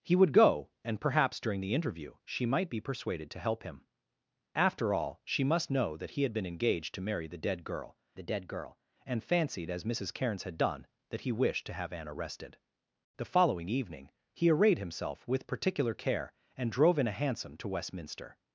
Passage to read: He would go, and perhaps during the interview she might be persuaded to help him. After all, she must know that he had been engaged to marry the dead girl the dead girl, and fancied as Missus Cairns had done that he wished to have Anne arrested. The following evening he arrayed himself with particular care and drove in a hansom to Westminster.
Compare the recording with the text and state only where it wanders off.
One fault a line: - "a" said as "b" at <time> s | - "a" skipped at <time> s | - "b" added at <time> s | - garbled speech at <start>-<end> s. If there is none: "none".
none